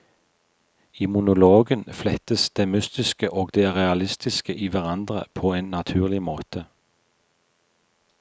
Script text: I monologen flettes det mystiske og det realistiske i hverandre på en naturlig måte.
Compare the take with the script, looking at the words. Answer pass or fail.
pass